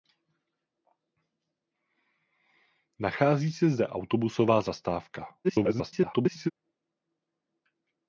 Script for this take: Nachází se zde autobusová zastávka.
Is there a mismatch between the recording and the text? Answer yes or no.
yes